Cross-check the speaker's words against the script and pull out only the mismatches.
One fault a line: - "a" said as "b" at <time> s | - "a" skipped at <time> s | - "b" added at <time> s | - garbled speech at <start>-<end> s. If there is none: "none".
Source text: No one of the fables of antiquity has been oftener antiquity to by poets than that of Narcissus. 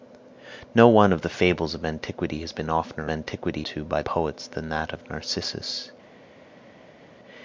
none